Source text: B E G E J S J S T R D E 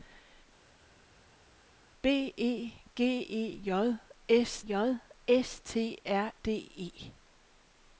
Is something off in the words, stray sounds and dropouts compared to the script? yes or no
no